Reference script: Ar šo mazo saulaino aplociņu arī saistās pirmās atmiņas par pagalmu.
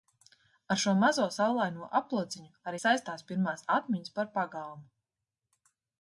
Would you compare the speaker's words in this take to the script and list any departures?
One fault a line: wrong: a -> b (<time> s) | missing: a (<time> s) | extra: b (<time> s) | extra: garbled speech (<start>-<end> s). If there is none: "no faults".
no faults